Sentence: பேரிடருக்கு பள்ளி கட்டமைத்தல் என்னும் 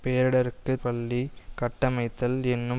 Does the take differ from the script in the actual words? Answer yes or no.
no